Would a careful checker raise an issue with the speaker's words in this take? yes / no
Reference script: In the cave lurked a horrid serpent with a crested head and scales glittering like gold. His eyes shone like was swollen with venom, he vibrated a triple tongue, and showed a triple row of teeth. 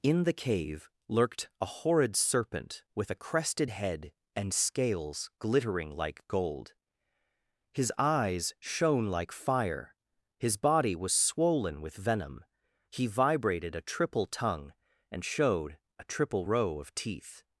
yes